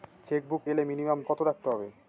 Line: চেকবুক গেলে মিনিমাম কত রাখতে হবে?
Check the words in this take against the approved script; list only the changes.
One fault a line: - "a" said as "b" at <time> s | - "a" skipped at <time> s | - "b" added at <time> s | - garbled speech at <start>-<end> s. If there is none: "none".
none